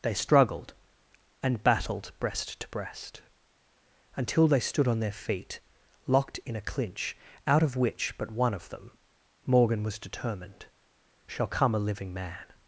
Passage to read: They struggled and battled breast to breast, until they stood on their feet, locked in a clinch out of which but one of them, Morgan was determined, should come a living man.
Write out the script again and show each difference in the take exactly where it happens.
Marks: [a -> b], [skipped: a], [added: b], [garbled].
They struggled and battled breast to breast, until they stood on their feet, locked in a clinch out of which but one of them, Morgan was determined, [should -> shall] come a living man.